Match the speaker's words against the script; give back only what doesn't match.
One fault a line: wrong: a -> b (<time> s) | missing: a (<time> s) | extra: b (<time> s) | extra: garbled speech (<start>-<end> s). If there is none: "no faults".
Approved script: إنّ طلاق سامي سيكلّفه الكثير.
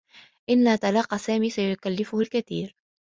no faults